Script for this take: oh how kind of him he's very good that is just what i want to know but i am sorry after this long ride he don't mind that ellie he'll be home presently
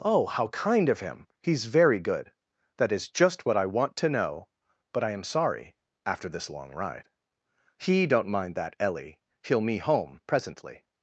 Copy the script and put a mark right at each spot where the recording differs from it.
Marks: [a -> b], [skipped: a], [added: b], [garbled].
oh how kind of him he's very good that is just what i want to know but i am sorry after this long ride he don't mind that ellie he'll [be -> me] home presently